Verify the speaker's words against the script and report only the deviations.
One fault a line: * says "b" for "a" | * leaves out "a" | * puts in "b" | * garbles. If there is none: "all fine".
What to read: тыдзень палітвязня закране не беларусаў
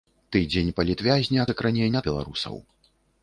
all fine